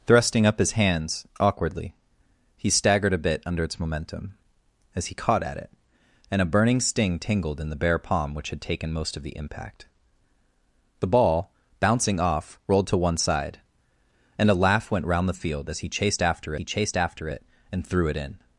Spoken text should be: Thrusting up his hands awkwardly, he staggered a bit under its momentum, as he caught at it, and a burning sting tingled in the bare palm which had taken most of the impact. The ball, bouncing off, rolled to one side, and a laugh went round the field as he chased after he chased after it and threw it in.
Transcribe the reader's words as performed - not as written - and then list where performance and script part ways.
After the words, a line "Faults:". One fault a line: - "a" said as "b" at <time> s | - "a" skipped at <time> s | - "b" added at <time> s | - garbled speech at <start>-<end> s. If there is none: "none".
Thrusting up his hands awkwardly, he staggered a bit under its momentum, as he caught at it, and a burning sting tingled in the bare palm which had taken most of the impact. The ball, bouncing off, rolled to one side, and a laugh went round the field as he chased after he chased after it and threw it in.
Faults:
none